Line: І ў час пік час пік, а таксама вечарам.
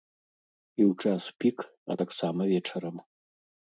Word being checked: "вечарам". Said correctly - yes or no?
yes